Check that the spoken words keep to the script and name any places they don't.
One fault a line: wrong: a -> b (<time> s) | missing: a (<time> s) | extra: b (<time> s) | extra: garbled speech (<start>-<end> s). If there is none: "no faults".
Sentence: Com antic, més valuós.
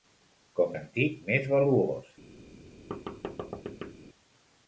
no faults